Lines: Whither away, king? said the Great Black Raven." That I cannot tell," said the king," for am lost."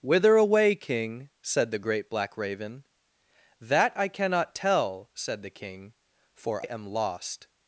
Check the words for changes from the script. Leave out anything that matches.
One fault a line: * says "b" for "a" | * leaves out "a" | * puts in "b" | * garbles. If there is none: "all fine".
all fine